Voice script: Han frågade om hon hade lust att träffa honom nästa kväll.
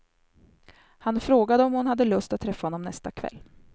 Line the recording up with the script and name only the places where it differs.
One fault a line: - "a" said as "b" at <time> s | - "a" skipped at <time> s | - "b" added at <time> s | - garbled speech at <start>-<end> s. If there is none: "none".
none